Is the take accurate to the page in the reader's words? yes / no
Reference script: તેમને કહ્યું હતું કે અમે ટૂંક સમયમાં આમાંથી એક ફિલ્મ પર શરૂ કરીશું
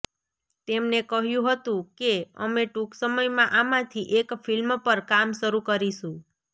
no